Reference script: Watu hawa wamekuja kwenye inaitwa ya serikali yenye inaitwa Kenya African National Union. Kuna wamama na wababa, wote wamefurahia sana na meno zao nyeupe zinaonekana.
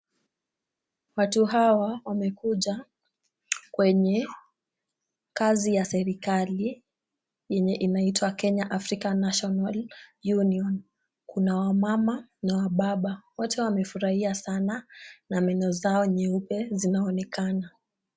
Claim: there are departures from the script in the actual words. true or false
true